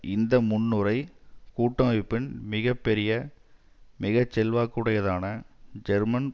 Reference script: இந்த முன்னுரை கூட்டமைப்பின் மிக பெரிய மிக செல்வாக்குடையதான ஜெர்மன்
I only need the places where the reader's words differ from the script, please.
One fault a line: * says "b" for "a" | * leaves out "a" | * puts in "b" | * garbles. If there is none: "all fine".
all fine